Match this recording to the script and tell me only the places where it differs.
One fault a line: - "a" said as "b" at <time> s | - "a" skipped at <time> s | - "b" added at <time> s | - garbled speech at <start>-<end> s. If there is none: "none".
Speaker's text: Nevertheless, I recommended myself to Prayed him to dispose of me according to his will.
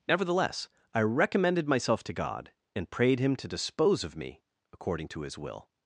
- "God and" added at 2.1 s